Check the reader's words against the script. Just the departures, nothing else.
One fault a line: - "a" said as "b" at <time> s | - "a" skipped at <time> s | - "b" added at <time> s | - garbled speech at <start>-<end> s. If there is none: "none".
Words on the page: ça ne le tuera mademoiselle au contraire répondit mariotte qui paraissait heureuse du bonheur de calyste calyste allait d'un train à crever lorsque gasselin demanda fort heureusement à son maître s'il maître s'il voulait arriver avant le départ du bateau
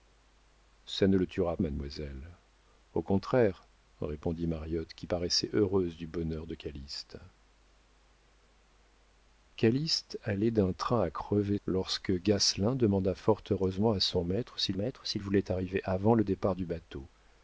none